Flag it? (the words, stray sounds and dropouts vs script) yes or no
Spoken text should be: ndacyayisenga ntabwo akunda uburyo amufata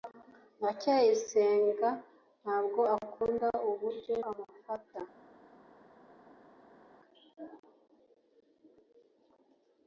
no